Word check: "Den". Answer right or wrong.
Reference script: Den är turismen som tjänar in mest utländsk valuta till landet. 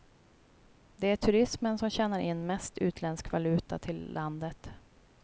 wrong